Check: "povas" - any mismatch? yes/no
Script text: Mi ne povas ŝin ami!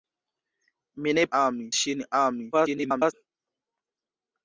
yes